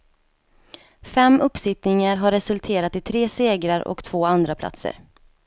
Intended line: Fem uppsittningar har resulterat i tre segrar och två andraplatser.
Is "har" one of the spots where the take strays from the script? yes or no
no